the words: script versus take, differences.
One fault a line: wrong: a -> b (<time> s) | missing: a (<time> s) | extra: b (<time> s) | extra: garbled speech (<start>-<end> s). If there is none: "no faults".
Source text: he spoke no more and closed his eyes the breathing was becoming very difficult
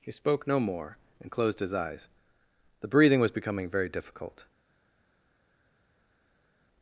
no faults